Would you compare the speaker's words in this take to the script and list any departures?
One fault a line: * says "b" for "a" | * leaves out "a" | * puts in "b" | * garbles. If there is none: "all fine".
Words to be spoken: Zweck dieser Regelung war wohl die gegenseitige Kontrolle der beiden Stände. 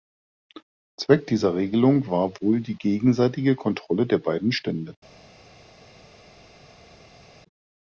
all fine